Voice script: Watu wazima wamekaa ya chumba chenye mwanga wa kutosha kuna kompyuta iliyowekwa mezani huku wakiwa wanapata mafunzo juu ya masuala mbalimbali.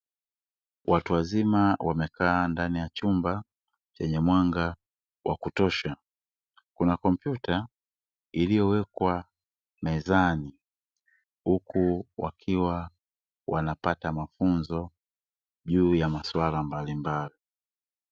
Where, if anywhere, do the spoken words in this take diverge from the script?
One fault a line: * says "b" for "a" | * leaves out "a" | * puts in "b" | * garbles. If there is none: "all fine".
* puts in "ndani"